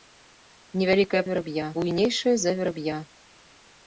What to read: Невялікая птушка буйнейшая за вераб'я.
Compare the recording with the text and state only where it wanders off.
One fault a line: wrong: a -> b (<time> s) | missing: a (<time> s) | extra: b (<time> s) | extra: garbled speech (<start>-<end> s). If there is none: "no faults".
wrong: птушка -> вераб'я (1.3 s)